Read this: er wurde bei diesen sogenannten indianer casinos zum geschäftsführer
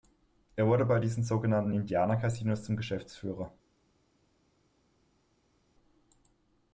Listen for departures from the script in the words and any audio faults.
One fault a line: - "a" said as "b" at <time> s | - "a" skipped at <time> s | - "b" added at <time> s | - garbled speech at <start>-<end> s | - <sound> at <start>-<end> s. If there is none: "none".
none